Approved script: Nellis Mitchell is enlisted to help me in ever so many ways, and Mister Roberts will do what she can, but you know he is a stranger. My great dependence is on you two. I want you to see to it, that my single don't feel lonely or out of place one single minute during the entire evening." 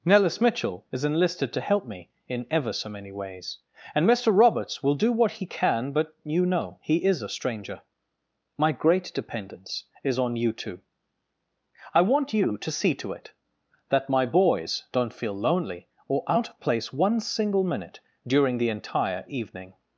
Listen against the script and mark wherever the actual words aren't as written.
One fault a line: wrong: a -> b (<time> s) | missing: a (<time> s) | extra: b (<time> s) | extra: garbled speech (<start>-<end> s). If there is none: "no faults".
wrong: she -> he (5.3 s)
wrong: single -> boys (14.2 s)